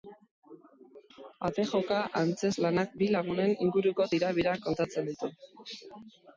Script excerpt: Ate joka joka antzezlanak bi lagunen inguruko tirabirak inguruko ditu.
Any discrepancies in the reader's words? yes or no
yes